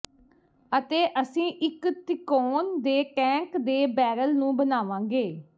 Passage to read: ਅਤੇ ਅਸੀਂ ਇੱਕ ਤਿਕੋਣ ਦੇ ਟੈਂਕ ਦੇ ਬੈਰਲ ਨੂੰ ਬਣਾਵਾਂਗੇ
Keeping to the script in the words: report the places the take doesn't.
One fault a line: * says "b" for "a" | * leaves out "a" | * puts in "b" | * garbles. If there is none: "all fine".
all fine